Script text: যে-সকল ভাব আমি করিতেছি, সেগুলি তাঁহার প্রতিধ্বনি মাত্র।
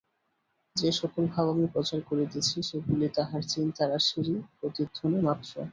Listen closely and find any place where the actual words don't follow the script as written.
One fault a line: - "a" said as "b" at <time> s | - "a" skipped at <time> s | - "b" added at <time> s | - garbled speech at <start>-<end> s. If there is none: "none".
- "প্রচার" added at 1.7 s
- "চিন্তারাশিরই" added at 3.5 s